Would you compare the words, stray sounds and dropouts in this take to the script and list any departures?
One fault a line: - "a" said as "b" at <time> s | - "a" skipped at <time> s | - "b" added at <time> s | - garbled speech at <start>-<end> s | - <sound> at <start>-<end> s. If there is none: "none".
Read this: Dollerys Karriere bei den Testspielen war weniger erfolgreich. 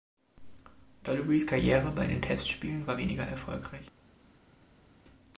none